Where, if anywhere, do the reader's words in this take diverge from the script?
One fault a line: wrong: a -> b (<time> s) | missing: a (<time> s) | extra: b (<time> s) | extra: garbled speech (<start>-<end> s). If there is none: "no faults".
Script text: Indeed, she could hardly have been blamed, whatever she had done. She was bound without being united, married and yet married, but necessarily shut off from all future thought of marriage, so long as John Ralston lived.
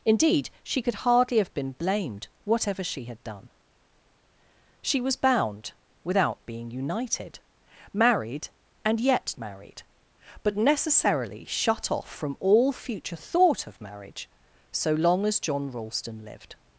no faults